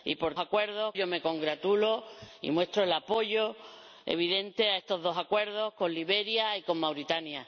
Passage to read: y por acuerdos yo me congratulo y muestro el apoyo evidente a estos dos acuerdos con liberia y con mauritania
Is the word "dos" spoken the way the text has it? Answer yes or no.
yes